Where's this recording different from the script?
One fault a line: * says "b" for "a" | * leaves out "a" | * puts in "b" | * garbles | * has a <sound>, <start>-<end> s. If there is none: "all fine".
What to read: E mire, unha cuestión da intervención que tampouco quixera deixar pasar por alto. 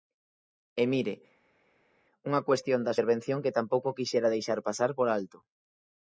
all fine